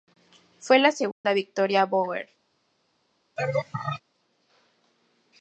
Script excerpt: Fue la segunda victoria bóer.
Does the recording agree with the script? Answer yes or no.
yes